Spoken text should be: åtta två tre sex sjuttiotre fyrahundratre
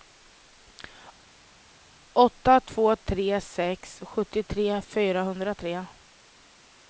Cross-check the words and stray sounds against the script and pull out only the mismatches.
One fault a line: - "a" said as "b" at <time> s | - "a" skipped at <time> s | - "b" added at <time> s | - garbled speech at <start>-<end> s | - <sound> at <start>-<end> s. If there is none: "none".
none